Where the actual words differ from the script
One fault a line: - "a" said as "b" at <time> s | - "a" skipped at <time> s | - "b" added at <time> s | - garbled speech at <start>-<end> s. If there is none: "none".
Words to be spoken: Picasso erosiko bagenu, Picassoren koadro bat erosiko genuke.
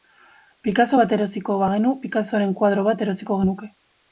- "bat" added at 1.0 s